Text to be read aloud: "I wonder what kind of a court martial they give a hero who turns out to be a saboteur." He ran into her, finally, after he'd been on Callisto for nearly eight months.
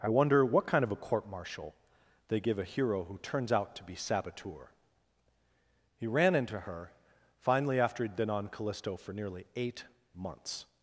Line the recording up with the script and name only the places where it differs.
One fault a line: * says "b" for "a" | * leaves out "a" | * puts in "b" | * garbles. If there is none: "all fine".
* leaves out "a"